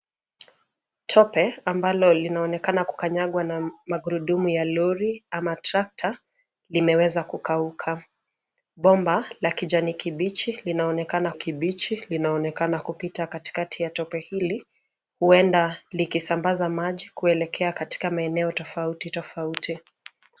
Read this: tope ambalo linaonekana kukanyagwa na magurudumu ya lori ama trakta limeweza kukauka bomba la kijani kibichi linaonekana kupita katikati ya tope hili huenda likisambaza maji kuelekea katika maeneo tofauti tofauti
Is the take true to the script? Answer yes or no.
no